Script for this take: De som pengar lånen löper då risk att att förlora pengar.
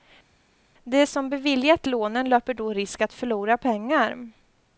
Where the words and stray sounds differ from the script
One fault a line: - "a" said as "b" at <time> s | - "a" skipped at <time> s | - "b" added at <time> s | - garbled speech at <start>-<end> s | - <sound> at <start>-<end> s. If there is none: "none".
- "pengar" said as "beviljat" at 1.3 s
- "att" skipped at 3.1 s